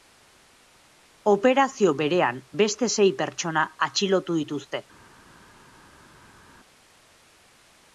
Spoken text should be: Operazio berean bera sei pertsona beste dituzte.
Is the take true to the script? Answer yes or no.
no